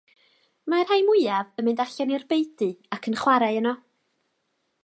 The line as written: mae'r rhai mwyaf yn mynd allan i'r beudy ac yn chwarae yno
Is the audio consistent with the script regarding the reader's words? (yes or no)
yes